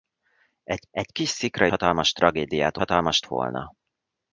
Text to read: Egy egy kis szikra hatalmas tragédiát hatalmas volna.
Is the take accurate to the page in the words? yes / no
yes